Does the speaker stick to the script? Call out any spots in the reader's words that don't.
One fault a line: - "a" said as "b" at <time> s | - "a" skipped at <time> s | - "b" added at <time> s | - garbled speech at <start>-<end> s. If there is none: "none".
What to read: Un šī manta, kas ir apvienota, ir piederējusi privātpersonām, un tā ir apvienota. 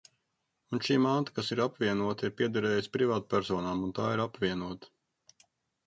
none